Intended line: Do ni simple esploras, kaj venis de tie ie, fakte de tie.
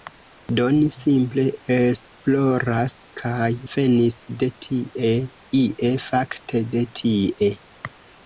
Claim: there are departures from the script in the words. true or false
false